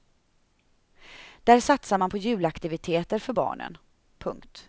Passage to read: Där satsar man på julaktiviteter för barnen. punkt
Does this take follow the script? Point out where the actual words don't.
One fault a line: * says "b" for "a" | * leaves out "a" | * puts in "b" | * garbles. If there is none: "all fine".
all fine